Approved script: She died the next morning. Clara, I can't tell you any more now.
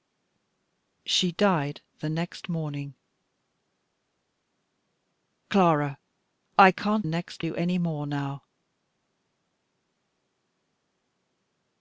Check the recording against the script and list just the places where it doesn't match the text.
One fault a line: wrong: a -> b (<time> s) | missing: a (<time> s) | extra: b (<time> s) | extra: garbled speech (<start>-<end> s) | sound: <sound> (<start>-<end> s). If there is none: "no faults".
wrong: tell -> next (7.0 s)